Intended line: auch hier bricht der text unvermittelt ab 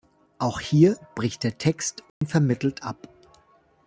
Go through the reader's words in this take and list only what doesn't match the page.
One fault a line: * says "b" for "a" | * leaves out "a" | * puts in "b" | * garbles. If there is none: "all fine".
all fine